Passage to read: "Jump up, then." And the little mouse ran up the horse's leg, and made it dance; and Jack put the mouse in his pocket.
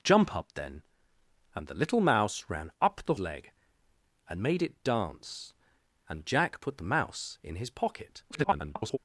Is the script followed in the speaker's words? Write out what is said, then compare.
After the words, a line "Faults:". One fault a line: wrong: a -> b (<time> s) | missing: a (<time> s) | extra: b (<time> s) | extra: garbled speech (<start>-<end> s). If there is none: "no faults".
"Jump up, then." And the little mouse ran up the leg, and made it dance; and Jack put the mouse in his pocket. [garbled]
Faults:
missing: horse's (3.1 s)
extra: garbled speech (8.3-9.0 s)